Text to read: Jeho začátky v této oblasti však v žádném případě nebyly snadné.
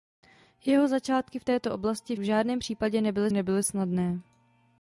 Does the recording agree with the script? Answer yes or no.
no